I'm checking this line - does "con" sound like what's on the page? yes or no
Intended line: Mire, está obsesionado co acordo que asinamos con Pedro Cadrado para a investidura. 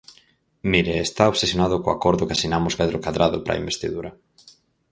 no